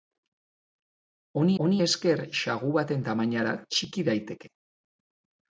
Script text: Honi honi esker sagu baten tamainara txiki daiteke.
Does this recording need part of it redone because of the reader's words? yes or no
no